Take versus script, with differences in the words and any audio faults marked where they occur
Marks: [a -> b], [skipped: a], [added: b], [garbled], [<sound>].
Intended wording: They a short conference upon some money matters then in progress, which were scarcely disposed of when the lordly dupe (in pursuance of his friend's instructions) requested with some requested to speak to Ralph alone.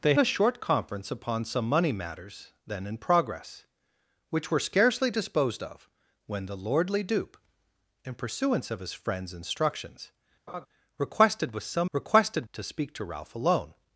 They a short conference upon some money matters then in progress, which were scarcely disposed of when the lordly dupe (in pursuance of his friend's instructions) [laugh] requested with some requested to speak to Ralph alone.